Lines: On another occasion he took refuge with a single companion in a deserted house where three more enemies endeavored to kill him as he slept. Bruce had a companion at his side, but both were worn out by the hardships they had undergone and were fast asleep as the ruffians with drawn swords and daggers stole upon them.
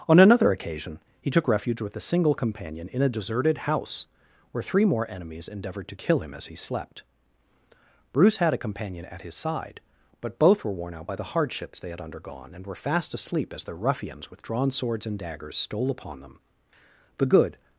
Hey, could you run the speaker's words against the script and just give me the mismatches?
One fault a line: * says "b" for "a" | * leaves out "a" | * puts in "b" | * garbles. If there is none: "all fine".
* puts in "The good"